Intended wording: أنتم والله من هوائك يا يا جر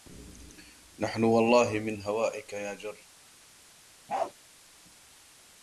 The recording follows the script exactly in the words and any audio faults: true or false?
false